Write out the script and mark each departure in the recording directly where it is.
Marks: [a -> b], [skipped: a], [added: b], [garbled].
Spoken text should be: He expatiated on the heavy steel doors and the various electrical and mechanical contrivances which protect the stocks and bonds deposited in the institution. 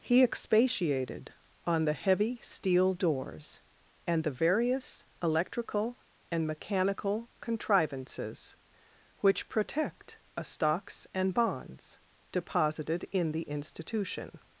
He expatiated on the heavy steel doors and the various electrical and mechanical contrivances which protect [the -> a] stocks and bonds deposited in the institution.